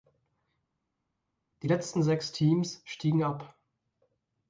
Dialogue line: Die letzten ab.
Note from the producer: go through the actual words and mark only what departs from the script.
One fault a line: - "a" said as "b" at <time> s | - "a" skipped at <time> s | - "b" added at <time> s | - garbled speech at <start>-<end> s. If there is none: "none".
- "sechs Teams stiegen" added at 2.0 s